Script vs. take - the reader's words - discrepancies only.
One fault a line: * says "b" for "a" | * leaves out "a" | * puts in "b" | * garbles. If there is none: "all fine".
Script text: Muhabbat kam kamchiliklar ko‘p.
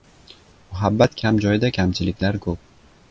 * puts in "joyda"